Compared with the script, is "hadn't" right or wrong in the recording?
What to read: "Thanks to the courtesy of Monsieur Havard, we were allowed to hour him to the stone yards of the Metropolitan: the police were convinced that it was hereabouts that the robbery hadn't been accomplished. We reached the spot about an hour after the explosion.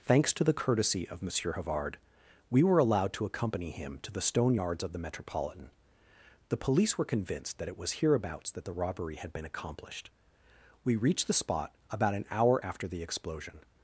wrong